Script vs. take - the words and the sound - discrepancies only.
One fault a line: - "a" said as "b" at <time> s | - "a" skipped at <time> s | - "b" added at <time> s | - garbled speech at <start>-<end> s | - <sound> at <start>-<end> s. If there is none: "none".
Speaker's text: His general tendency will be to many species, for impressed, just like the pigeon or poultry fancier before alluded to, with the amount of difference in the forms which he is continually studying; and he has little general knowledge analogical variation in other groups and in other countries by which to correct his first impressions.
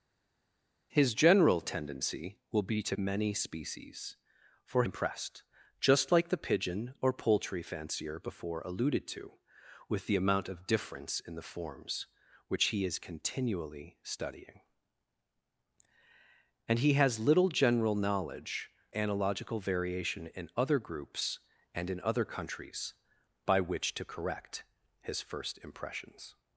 none